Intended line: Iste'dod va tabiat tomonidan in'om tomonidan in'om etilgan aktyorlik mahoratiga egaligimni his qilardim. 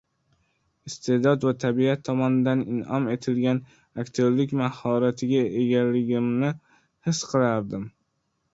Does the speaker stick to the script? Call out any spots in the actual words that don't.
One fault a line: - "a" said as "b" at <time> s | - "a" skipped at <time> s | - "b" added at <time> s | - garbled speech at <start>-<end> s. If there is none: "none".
- "tomonidan in'om" skipped at 3.1 s